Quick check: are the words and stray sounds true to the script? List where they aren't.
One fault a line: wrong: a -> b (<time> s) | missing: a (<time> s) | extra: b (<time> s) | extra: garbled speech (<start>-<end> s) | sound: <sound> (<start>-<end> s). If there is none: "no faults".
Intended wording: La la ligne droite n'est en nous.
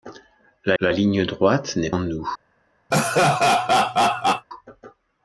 sound: laugh (2.9-4.5 s)